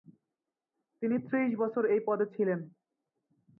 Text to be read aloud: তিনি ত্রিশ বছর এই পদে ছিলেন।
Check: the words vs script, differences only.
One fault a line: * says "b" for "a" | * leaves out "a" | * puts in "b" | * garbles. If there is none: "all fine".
all fine